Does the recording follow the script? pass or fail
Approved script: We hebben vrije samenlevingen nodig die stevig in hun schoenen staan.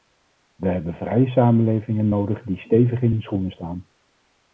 pass